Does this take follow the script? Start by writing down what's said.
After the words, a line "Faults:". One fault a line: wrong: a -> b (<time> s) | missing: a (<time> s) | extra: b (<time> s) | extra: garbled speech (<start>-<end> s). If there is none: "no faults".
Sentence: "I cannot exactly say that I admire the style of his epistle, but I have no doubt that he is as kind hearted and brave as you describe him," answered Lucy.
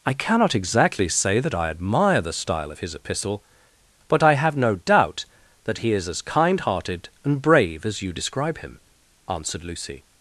"I cannot exactly say that I admire the style of his epistle, but I have no doubt that he is as kind hearted and brave as you describe him," answered Lucy.
Faults:
no faults